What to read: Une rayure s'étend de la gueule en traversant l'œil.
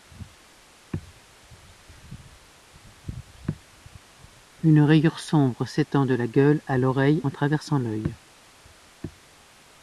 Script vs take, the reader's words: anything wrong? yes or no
yes